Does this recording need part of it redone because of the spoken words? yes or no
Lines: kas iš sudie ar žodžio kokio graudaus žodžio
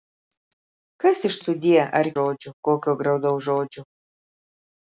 no